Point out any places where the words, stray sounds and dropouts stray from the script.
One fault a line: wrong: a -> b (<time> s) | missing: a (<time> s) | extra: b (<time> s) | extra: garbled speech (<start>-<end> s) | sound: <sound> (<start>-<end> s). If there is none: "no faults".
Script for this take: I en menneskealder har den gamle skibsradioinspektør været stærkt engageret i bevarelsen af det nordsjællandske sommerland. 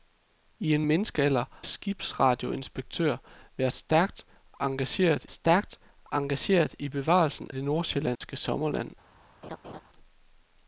missing: har den gamle (1.4 s)
extra: stærkt engageret (5.3 s)
missing: af (7.5 s)
sound: dropout (8.2-8.2 s)
sound: laugh (9.4-9.8 s)